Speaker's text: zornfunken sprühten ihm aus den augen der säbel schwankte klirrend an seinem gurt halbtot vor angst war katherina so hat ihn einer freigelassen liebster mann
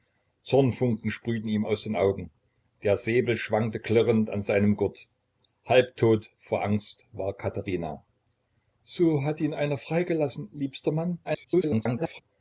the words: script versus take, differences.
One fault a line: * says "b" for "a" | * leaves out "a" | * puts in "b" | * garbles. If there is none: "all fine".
* garbles